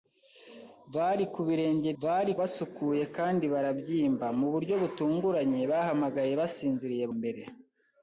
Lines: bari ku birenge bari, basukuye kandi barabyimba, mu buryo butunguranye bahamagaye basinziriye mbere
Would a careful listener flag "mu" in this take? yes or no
no